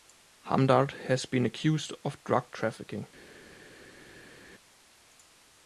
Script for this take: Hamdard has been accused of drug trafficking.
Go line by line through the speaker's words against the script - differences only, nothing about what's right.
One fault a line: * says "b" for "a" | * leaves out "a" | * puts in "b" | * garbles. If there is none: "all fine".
all fine